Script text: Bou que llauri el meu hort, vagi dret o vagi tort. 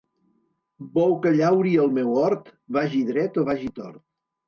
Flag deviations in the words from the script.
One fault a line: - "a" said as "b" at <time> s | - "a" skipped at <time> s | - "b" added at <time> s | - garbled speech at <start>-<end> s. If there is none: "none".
none